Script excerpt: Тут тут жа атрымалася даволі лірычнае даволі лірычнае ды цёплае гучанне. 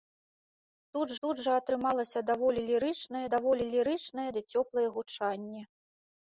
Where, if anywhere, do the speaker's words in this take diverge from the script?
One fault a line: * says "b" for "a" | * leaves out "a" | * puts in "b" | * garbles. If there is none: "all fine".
all fine